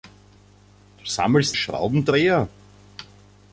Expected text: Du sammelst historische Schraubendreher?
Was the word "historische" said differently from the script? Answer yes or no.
yes